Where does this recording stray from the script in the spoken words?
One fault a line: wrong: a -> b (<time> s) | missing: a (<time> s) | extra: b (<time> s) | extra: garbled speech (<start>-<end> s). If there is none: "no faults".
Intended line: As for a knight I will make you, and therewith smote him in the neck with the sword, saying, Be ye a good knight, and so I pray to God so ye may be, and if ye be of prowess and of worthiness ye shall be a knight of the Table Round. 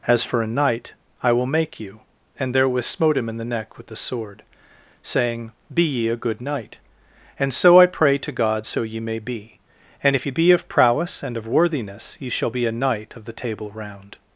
no faults